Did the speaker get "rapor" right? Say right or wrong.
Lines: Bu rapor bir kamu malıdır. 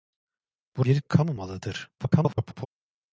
wrong